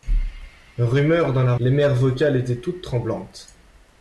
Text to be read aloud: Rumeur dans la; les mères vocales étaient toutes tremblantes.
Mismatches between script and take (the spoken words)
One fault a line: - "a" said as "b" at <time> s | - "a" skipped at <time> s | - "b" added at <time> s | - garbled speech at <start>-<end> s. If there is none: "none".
none